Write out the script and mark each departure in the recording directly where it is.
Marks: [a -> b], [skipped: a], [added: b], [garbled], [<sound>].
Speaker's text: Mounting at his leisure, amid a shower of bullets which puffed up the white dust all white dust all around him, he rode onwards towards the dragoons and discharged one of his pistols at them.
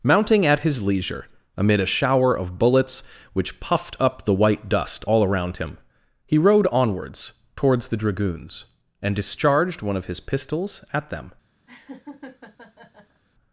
Mounting at his leisure, amid a shower of bullets which puffed up the white dust all [skipped: white dust all] around him, he rode onwards towards the dragoons and discharged one of his pistols at them. [laugh]